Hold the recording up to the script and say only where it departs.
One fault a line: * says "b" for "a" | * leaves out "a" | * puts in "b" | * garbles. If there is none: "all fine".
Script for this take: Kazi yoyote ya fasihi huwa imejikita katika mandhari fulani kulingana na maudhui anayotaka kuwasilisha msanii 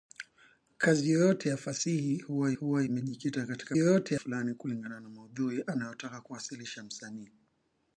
* puts in "huwa"
* says "yoyote" for "mandhari"